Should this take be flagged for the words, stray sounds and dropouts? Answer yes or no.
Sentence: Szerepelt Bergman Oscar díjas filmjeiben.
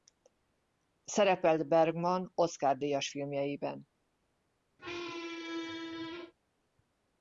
yes